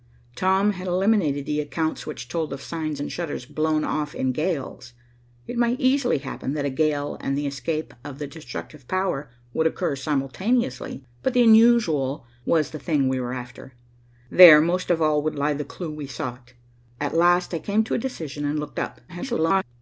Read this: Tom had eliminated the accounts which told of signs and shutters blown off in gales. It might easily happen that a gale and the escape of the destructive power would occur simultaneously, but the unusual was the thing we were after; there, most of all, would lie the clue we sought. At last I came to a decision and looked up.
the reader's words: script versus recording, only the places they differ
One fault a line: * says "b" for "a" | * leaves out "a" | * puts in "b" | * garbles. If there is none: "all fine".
* garbles